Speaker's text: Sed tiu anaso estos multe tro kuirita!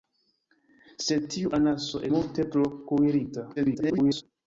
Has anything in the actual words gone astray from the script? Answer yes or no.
yes